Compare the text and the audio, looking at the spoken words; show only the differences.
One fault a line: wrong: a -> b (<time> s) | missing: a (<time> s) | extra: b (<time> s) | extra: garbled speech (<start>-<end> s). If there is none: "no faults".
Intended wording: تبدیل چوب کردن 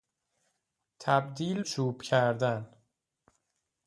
no faults